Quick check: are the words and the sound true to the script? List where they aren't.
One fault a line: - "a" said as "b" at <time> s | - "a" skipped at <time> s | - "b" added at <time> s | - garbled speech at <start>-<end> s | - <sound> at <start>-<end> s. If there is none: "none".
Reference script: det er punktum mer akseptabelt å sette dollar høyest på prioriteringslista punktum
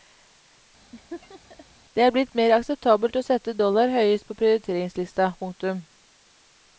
- laugh at 0.9-1.7 s
- "punktum" said as "blitt" at 2.1 s